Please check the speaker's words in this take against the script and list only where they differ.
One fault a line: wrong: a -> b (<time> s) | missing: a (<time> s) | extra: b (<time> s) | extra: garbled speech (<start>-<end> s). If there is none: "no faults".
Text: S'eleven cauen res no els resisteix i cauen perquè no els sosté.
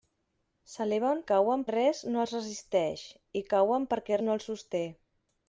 no faults